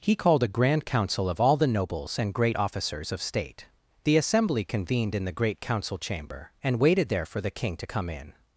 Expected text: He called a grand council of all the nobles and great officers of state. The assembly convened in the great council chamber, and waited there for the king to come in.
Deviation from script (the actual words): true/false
false